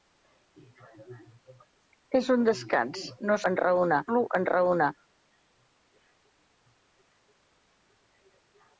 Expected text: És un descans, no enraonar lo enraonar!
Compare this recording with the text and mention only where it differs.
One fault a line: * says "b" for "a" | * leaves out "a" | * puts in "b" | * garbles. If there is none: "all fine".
all fine